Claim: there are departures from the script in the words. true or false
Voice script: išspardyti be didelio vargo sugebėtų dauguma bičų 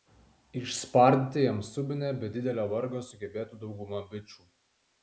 true